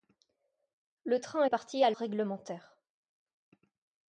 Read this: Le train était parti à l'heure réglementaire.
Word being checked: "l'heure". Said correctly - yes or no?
no